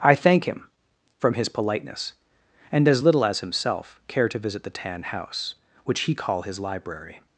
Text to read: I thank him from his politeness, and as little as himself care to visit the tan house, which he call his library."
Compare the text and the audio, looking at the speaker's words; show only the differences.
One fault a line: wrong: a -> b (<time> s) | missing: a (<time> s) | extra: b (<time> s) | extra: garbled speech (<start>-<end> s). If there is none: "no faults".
no faults